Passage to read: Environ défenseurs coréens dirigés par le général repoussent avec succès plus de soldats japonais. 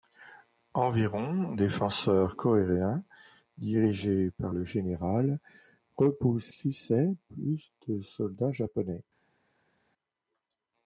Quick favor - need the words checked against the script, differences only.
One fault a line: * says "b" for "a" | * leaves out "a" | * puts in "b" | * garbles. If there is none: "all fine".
* leaves out "avec"